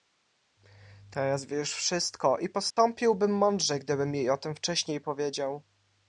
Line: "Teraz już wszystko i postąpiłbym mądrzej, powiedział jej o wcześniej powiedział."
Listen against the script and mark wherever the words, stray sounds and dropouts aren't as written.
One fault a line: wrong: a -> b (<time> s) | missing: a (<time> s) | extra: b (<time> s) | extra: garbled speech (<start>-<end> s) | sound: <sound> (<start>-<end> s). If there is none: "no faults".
extra: wie (1.4 s)
sound: dropout (2.7-2.8 s)
wrong: powiedział -> gdybym (3.8 s)
extra: tem (4.4 s)